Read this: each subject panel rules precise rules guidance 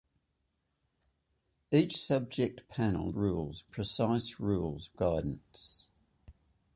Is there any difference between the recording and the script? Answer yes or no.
no